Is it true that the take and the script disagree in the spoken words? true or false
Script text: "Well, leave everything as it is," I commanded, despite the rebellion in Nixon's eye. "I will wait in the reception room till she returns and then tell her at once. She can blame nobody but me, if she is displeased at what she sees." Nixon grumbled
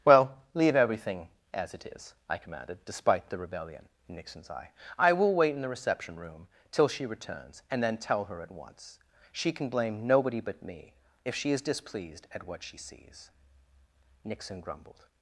false